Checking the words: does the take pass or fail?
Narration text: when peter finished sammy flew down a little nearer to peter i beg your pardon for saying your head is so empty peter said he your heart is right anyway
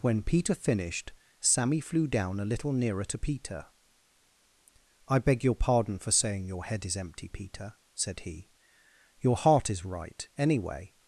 fail